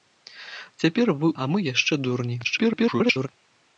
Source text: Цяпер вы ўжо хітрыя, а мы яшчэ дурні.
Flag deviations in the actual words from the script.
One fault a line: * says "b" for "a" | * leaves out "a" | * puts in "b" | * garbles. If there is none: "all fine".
* leaves out "ўжо хітрыя"
* garbles